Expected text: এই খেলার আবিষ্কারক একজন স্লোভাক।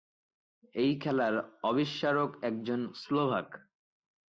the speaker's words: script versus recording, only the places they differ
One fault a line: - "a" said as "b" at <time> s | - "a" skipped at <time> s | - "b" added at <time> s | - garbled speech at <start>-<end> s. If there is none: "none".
none